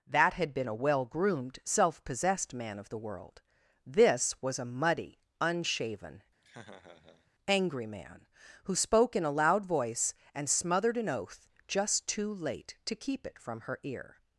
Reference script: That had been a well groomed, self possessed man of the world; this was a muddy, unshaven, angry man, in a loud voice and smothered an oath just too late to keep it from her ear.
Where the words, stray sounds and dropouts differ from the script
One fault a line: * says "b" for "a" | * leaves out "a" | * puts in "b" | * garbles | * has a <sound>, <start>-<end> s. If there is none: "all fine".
* has a laugh, 6.4-7.3 s
* puts in "who spoke"